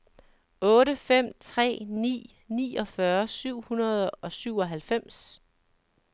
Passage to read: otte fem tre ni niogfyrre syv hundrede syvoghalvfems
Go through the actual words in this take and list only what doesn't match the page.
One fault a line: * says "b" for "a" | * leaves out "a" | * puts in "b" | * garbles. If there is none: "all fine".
* puts in "og"